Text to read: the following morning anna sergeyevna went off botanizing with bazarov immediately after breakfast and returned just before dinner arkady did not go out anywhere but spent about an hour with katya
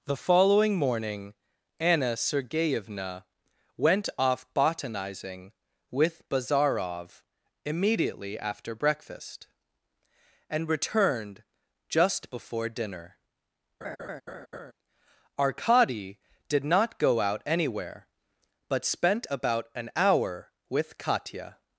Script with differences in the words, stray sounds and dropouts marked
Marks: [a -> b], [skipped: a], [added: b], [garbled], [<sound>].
the following morning anna sergeyevna went off botanizing with bazarov immediately after breakfast and returned just before dinner [laugh] arkady did not go out anywhere but spent about an hour with katya